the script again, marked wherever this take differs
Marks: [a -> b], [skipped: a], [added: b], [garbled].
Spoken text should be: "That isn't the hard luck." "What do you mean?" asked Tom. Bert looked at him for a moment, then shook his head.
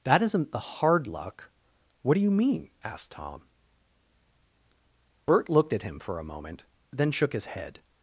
"That isn't the hard luck." "What do you mean?" asked Tom. Bert looked at him for a moment, then shook his head.